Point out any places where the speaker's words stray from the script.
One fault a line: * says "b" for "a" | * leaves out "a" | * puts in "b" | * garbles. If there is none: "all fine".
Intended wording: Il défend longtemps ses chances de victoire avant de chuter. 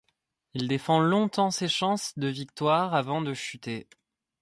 all fine